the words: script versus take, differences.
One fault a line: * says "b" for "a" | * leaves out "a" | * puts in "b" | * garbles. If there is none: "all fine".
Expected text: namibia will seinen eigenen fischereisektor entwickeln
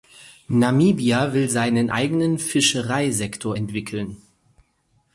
all fine